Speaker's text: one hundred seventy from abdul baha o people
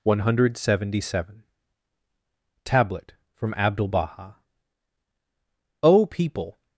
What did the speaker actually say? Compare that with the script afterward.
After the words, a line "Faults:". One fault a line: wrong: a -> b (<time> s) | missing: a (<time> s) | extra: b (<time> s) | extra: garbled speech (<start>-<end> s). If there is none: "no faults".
one hundred seventy seven tablet from abdul baha o people
Faults:
extra: seven tablet (1.1 s)